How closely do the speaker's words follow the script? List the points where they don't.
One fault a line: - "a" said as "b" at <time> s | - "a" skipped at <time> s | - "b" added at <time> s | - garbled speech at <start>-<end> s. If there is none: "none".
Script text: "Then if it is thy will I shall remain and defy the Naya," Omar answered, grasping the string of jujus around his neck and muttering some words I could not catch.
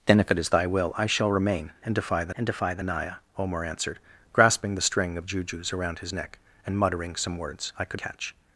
- "and defy the" added at 2.3 s
- "not" skipped at 8.0 s